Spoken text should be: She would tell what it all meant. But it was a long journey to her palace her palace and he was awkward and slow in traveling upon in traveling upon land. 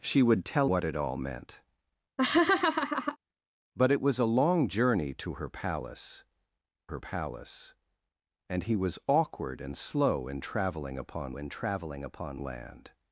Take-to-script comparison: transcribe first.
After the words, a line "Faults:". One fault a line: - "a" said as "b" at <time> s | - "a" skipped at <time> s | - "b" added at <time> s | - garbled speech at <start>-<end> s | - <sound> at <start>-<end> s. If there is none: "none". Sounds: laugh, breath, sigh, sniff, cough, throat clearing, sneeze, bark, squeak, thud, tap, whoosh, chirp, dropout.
She would tell what it all meant. But it was a long journey to her palace her palace and he was awkward and slow in traveling upon in traveling upon land.
Faults:
- laugh at 2.2-3.2 s